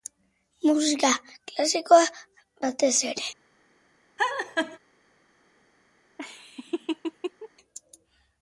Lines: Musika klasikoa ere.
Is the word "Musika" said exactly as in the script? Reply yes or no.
yes